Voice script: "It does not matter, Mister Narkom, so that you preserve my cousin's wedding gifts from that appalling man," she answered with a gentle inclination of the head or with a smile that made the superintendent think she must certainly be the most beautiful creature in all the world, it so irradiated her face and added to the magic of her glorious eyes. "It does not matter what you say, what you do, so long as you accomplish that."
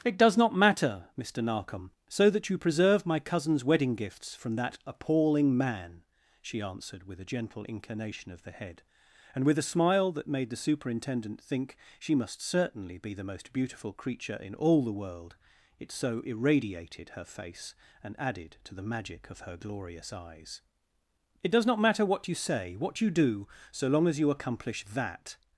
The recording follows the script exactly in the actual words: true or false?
false